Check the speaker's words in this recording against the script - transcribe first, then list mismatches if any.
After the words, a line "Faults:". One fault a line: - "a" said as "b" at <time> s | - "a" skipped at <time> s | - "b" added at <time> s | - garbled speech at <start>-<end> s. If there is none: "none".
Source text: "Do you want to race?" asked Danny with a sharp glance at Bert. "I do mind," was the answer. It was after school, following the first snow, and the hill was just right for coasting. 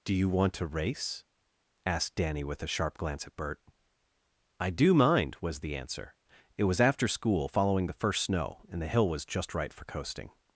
"Do you want to race?" asked Danny with a sharp glance at Bert. "I do mind," was the answer. It was after school, following the first snow, and the hill was just right for coasting.
Faults:
none